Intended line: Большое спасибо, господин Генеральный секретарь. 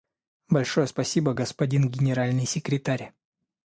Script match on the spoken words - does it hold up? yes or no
yes